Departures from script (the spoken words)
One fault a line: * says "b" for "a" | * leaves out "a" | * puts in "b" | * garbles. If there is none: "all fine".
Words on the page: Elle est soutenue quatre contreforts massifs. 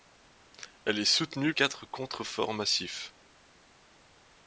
all fine